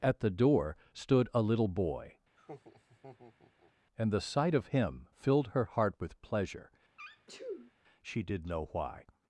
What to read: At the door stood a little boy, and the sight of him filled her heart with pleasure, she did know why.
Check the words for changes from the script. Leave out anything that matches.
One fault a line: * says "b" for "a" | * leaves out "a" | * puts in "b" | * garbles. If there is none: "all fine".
all fine